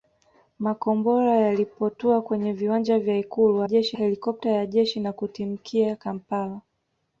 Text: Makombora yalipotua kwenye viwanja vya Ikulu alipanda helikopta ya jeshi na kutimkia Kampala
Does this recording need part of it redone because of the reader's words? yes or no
yes